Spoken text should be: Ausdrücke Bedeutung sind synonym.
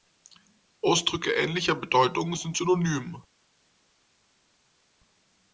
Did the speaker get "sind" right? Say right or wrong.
right